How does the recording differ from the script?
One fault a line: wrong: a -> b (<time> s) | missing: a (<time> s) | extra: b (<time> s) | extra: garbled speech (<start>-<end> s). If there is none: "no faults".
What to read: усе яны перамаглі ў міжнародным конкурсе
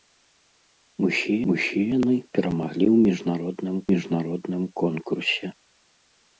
extra: усе (1.5 s)
extra: міжнародным (3.9 s)